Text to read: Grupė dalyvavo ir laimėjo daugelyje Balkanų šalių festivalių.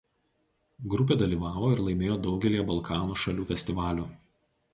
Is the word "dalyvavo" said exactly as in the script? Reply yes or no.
yes